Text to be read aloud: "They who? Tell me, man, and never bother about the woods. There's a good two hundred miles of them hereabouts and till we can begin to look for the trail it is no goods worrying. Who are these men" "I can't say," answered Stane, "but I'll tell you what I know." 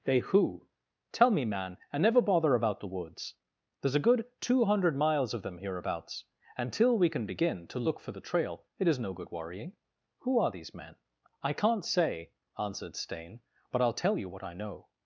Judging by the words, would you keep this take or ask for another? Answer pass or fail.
fail